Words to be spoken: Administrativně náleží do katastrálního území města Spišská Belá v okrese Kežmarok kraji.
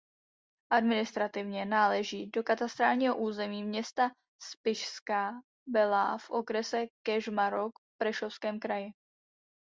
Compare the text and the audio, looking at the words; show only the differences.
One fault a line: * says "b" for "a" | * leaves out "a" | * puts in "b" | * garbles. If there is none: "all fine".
* puts in "v Prešovském"